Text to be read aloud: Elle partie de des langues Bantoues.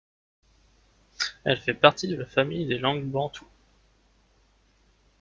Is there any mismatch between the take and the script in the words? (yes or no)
yes